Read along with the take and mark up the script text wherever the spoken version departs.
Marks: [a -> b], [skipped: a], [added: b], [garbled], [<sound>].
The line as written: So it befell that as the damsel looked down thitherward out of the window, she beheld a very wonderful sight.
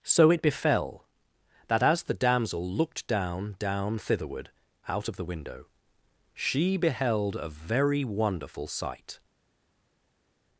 So it befell that as the damsel looked down [added: down] thitherward out of the window, she beheld a very wonderful sight.